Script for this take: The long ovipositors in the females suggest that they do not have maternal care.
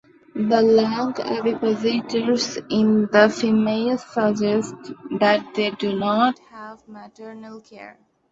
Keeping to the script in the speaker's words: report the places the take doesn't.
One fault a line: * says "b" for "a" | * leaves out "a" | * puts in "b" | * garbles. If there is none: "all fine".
all fine